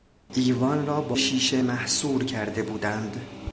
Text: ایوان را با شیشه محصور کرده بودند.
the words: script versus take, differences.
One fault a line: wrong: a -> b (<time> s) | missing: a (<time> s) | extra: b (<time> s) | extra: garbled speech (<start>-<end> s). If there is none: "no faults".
no faults